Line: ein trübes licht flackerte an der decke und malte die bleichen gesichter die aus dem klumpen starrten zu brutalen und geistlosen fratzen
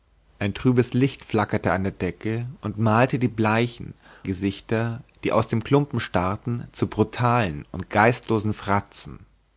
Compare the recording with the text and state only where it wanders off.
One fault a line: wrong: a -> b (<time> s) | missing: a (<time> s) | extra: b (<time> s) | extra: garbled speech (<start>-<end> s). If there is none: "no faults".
no faults